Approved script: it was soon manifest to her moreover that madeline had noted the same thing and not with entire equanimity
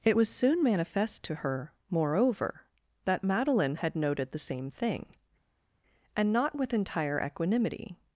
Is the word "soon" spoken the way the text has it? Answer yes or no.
yes